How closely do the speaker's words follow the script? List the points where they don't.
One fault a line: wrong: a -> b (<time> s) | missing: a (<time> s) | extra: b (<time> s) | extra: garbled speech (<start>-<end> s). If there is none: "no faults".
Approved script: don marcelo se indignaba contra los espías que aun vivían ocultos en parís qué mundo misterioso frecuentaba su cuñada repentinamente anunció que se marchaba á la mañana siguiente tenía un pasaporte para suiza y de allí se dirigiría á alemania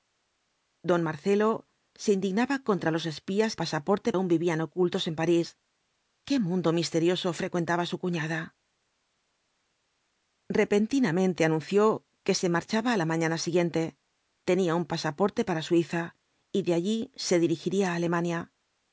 wrong: que -> pasaporte (3.6 s)